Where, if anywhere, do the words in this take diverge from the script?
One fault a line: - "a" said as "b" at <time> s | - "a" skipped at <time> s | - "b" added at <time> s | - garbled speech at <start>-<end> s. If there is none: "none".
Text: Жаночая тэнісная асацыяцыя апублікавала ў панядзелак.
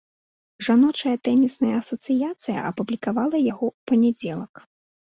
- "яго" added at 3.5 s